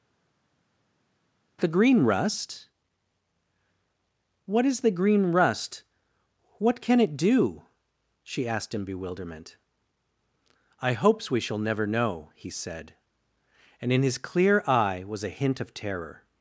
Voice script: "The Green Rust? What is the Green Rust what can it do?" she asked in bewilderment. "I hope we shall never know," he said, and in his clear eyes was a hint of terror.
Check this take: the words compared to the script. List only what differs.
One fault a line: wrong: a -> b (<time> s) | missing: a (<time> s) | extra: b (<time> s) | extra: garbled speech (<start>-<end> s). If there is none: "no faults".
wrong: hope -> hopes (10.9 s)
wrong: eyes -> eye (14.7 s)